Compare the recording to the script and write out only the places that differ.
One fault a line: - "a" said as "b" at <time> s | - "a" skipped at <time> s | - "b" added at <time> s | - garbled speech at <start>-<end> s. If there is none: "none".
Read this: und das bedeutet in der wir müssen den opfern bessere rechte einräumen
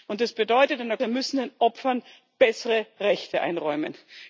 none